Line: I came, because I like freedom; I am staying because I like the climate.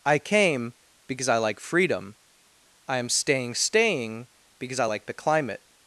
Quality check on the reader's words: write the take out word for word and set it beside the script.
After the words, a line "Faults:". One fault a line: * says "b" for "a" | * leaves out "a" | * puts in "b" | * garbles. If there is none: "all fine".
I came, because I like freedom; I am staying staying because I like the climate.
Faults:
* puts in "staying"